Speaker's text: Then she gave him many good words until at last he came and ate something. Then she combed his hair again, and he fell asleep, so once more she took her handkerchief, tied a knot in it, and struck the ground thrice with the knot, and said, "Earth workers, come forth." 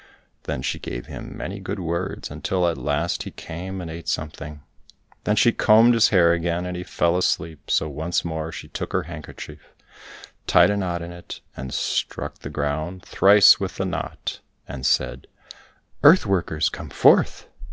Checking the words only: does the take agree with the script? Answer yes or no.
yes